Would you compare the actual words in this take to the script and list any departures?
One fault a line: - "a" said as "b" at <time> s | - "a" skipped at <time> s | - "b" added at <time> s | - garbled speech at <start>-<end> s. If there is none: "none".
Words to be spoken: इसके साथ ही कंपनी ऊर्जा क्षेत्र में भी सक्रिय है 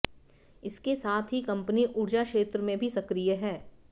none